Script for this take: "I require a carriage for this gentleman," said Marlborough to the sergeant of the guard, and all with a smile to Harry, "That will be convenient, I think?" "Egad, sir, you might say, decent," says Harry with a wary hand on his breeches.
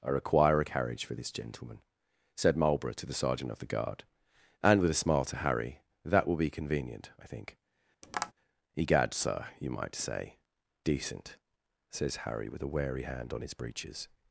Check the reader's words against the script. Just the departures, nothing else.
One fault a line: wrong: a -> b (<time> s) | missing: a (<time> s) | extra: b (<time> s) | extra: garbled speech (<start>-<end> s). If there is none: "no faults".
missing: all (4.8 s)